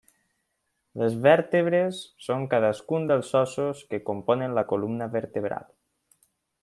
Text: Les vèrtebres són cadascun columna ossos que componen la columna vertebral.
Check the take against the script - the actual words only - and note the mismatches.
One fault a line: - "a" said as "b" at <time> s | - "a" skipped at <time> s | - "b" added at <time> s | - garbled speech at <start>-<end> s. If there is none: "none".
- "columna" said as "dels" at 3.1 s